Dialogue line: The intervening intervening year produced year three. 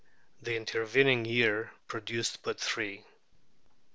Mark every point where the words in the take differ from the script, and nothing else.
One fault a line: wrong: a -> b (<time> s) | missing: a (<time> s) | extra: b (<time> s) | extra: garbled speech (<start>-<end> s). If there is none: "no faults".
missing: intervening (1.2 s)
wrong: year -> but (2.4 s)